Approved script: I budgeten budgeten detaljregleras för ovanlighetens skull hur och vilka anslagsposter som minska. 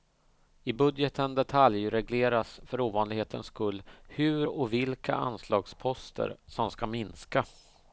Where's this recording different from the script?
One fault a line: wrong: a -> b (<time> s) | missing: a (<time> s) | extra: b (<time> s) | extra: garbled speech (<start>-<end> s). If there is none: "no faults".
missing: budgeten (1.3 s)
extra: ska (6.7 s)